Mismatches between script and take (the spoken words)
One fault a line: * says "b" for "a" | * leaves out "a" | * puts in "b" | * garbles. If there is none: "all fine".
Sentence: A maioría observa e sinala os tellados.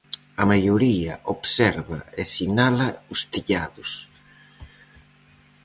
all fine